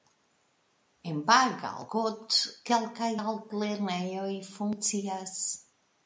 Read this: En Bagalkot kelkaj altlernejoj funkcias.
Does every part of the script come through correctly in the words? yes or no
yes